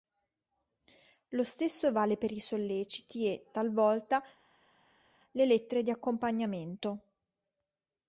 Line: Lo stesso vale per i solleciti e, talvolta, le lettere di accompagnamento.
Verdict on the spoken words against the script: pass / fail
pass